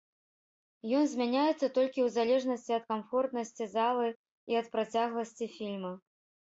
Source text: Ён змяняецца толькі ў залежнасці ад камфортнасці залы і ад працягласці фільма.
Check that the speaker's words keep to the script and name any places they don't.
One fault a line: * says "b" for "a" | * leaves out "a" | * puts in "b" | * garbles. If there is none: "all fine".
all fine